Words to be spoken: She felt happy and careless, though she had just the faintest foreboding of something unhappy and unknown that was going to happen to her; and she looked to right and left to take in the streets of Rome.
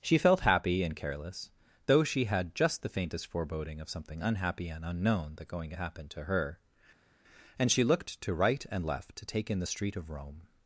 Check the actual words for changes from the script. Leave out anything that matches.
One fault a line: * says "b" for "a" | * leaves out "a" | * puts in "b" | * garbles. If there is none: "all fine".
* leaves out "was"
* says "street" for "streets"